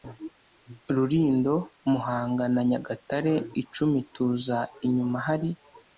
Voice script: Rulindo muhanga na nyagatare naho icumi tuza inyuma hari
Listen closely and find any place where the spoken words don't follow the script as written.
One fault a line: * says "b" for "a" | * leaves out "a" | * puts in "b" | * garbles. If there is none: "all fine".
* leaves out "naho"